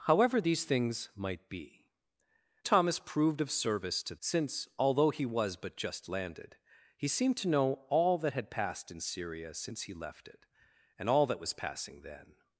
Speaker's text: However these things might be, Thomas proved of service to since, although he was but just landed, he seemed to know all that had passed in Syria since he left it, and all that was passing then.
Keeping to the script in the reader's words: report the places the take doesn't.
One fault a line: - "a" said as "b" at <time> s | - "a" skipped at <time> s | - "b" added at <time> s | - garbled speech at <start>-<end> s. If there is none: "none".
none